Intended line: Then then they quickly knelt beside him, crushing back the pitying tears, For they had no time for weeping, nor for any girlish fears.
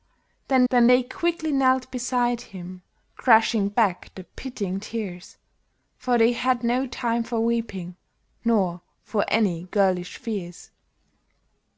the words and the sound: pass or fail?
pass